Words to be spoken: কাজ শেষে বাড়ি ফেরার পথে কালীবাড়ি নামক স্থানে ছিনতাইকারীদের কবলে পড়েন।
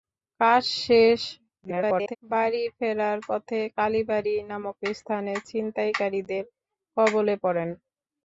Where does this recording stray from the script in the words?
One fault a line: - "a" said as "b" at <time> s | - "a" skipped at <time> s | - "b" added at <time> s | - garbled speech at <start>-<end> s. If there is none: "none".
- garbled speech at 1.6-2.2 s